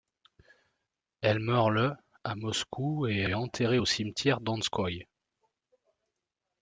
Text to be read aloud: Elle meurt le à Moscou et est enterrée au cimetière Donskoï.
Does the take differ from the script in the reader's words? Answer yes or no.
yes